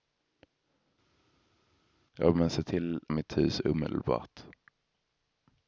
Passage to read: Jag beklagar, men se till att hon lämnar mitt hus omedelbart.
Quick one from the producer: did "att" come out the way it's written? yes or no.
no